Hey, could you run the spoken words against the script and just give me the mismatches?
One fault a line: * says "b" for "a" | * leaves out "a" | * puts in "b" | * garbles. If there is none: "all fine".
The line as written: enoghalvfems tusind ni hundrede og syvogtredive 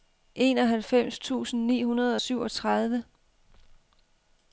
all fine